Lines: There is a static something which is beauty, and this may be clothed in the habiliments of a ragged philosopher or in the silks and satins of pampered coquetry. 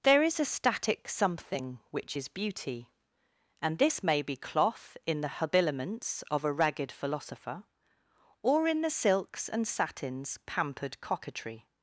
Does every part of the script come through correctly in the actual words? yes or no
no